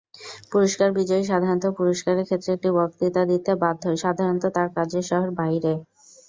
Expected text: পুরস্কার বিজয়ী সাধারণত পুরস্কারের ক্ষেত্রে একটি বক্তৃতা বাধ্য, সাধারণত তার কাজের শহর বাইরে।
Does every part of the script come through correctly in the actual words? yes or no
no